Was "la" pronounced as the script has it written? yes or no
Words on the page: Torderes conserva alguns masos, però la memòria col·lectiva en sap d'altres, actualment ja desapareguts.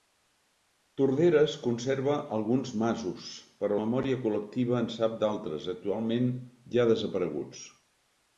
no